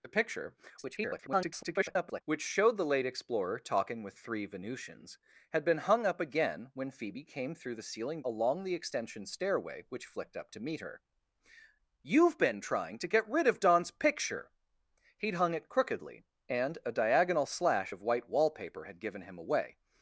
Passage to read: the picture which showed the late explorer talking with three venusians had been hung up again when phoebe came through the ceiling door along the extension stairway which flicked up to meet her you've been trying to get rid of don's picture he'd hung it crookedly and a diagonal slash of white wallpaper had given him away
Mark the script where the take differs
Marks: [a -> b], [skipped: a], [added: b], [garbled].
the picture [garbled] which showed the late explorer talking with three venusians had been hung up again when phoebe came through the ceiling [skipped: door] along the extension stairway which flicked up to meet her you've been trying to get rid of don's picture he'd hung it crookedly and a diagonal slash of white wallpaper had given him away